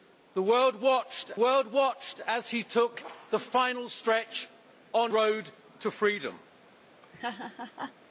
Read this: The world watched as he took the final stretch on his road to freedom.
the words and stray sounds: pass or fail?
fail